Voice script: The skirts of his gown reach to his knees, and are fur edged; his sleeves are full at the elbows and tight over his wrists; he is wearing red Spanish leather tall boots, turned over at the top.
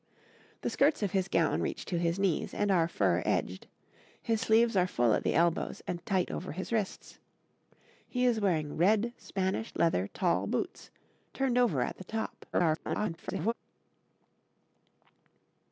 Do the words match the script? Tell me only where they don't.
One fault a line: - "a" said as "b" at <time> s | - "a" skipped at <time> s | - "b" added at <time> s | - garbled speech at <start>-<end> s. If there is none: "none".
- garbled speech at 12.5-13.5 s